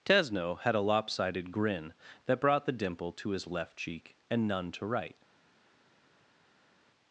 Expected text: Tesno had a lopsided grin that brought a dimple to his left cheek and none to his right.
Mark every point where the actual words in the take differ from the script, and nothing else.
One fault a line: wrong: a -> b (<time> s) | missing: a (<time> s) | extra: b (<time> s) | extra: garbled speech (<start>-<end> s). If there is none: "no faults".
wrong: a -> the (2.6 s)
missing: his (4.9 s)